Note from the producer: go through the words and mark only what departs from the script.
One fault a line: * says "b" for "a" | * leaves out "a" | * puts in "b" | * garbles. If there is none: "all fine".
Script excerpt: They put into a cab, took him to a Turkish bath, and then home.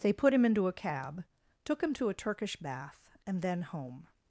* puts in "him"